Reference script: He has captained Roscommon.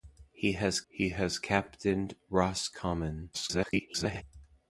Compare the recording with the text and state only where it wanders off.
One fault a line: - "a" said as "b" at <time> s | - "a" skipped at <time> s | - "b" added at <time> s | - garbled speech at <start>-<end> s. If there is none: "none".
- "he has" added at 0.9 s
- garbled speech at 3.3-4.2 s